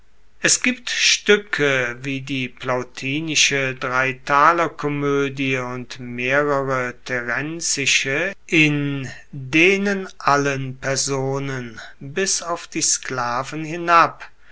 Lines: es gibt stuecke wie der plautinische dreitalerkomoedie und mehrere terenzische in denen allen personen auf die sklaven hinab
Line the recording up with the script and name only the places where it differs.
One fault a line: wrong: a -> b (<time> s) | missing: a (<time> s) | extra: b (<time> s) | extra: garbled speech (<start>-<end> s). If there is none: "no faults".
wrong: der -> die (2.2 s)
extra: bis (12.0 s)